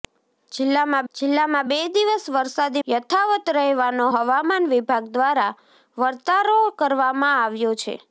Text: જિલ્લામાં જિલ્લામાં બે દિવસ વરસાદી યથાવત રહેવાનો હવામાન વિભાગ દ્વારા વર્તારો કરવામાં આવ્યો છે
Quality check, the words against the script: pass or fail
pass